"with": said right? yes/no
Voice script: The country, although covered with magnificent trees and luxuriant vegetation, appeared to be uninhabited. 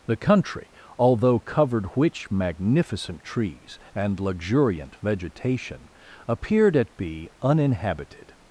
no